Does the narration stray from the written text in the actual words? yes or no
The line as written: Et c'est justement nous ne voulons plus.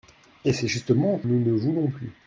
no